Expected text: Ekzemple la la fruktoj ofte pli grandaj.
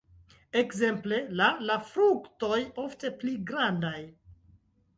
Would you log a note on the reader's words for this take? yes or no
no